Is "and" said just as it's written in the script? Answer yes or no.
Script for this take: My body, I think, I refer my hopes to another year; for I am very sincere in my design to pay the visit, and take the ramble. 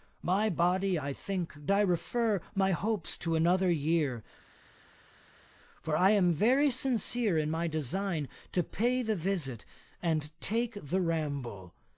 yes